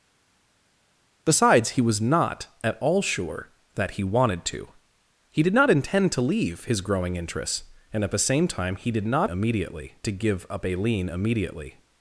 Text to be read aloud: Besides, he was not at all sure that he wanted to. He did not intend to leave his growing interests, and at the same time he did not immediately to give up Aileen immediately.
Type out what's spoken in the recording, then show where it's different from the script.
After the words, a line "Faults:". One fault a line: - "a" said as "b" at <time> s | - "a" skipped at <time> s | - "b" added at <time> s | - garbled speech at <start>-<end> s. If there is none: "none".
Besides, he was not at all sure that he wanted to. He did not intend to leave his growing interests, and at the same time he did not immediately to give up Aileen immediately.
Faults:
none